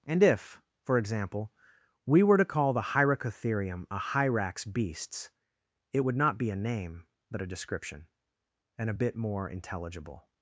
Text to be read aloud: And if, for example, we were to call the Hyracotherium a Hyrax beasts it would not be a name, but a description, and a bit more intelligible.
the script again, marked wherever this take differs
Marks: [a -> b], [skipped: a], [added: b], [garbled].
And if, for example, we were to call the Hyracotherium a Hyrax beasts it would not be a name, but a description, and a bit more intelligible.